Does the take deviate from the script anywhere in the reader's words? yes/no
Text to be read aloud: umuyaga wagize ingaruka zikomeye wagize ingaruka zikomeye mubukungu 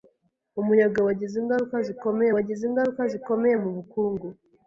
no